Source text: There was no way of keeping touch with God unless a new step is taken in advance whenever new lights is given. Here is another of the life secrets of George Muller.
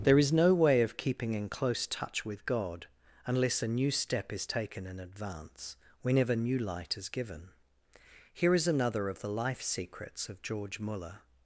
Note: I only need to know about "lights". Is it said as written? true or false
false